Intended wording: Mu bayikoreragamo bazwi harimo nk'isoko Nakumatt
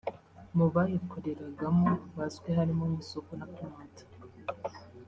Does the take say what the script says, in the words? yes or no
yes